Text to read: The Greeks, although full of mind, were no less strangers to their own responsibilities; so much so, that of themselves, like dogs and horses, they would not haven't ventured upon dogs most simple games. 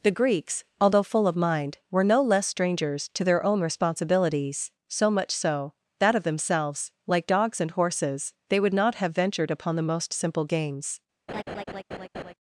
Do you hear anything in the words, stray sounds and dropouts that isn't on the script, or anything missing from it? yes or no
yes